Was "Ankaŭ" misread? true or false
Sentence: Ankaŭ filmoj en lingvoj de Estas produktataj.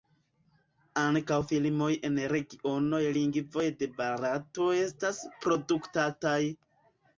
false